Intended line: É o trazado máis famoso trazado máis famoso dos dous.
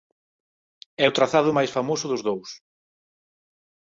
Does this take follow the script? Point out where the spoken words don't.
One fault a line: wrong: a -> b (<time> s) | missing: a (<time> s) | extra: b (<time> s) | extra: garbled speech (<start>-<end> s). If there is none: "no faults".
missing: trazado máis famoso (2.1 s)